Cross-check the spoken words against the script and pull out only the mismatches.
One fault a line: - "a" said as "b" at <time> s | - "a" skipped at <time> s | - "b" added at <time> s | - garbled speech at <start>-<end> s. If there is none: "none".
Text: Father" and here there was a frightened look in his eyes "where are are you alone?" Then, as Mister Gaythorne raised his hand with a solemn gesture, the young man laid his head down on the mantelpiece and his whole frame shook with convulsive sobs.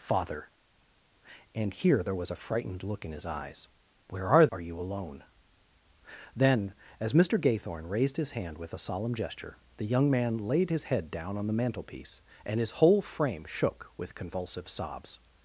none